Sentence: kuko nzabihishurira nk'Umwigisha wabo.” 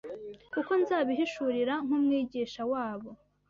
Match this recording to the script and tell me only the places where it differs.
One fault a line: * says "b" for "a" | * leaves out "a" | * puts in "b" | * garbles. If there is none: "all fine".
all fine